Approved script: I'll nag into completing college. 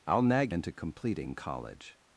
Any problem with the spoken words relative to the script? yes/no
no